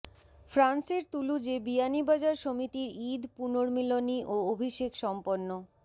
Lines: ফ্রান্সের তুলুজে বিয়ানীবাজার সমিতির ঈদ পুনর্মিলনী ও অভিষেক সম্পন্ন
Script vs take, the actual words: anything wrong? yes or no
no